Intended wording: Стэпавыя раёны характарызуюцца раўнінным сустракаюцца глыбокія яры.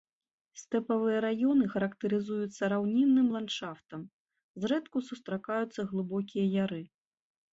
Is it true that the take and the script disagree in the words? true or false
true